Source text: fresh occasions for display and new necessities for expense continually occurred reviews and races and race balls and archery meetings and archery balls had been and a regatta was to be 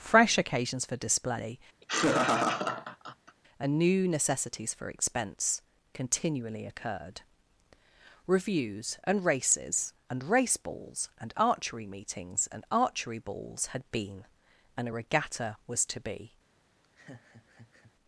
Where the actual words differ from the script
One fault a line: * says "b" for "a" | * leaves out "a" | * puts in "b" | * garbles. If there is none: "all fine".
all fine